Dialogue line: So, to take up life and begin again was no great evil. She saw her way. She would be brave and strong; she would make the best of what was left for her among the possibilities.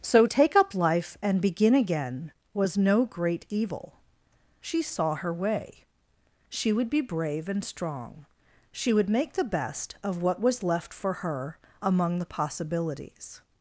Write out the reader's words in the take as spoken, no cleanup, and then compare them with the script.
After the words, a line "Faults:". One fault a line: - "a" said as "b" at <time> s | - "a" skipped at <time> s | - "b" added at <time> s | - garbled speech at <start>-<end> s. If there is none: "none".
So, take up life and begin again was no great evil. She saw her way. She would be brave and strong; she would make the best of what was left for her among the possibilities.
Faults:
- "to" skipped at 0.2 s